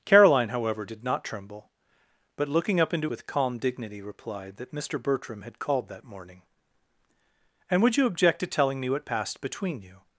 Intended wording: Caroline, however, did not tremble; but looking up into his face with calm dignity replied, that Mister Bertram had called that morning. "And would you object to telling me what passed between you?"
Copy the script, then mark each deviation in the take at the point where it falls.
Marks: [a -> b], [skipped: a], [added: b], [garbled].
Caroline, however, did not tremble; but looking up into [skipped: his face] with calm dignity replied, that Mister Bertram had called that morning. "And would you object to telling me what passed between you?"